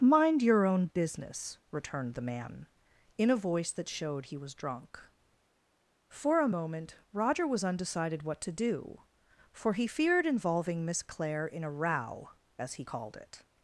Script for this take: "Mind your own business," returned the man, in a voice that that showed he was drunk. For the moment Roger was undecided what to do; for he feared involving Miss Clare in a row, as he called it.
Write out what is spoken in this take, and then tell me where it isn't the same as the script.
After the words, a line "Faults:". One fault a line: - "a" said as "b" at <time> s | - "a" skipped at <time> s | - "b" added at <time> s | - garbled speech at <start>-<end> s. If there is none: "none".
"Mind your own business," returned the man, in a voice that showed he was drunk. For a moment Roger was undecided what to do; for he feared involving Miss Clare in a row, as he called it.
Faults:
- "that" skipped at 3.9 s
- "the" said as "a" at 6.4 s